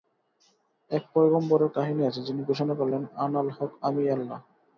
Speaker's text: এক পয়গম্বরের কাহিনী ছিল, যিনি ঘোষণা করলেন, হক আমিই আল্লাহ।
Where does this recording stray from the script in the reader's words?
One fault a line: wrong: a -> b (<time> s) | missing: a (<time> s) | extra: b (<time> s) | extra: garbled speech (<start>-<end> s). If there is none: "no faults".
wrong: ছিল -> আছে (2.0 s)
extra: আনাল (3.2 s)